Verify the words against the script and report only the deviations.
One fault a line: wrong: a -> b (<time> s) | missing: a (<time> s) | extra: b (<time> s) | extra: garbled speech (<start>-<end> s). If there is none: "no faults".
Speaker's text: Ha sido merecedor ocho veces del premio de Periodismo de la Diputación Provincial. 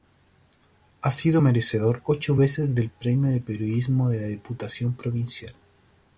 no faults